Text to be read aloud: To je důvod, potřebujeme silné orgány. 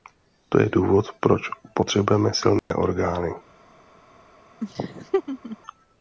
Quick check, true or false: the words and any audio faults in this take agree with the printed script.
false